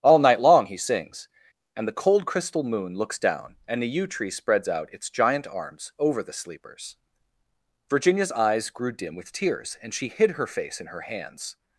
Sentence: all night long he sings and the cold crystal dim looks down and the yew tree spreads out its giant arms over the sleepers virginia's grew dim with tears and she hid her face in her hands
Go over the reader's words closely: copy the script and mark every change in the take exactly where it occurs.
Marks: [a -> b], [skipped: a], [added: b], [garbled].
all night long he sings and the cold crystal [dim -> moon] looks down and the yew tree spreads out its giant arms over the sleepers virginia's [added: eyes] grew dim with tears and she hid her face in her hands